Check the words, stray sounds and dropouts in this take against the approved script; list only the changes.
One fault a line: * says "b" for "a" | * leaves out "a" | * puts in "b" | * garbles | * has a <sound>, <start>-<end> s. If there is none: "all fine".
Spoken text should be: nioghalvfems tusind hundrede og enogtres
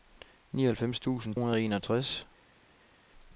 all fine